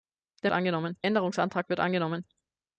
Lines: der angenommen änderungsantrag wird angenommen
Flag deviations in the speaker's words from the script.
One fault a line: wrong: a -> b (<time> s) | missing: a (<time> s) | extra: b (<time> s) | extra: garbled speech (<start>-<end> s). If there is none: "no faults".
no faults